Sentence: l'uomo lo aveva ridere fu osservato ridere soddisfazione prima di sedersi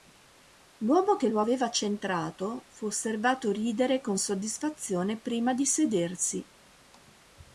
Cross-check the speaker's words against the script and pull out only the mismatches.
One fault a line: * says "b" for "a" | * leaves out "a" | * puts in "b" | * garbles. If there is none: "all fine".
* puts in "che"
* says "centrato" for "ridere"
* puts in "con"